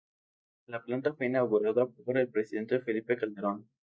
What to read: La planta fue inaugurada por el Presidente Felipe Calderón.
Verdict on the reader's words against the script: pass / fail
pass